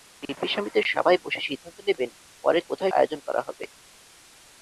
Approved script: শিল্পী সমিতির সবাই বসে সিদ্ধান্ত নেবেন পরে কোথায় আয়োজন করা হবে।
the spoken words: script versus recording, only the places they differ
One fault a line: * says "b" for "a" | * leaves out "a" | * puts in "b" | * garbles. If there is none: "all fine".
all fine